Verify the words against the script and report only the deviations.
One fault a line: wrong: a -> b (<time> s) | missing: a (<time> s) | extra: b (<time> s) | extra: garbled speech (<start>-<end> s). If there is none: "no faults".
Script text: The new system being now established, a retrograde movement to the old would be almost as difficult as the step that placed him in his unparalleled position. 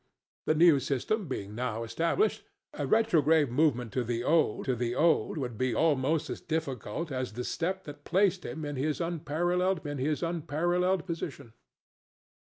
extra: to the old (4.6 s)
extra: in his unparalleled (9.9 s)